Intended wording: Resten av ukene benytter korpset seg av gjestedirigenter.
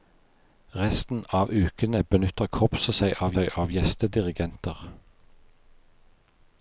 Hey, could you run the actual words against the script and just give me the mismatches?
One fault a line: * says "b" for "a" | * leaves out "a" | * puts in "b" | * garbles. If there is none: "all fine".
* puts in "seg av"